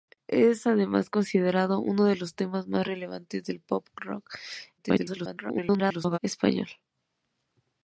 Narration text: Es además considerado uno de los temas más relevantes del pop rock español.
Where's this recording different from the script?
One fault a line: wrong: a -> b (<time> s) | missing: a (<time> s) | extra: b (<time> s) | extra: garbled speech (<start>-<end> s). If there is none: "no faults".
extra: garbled speech (4.8-6.2 s)